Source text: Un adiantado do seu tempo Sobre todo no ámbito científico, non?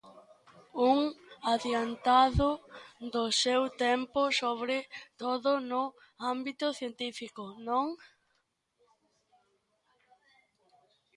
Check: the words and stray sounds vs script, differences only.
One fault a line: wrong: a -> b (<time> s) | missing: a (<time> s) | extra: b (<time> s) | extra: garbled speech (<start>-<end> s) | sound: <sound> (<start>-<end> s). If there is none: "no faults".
no faults